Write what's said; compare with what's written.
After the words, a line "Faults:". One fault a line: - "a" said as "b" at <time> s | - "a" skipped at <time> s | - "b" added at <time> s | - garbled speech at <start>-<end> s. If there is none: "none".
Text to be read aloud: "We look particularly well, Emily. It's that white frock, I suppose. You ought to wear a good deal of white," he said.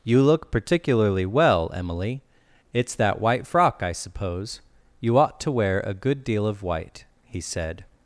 "You look particularly well, Emily. It's that white frock, I suppose. You ought to wear a good deal of white," he said.
Faults:
- "We" said as "You" at 0.0 s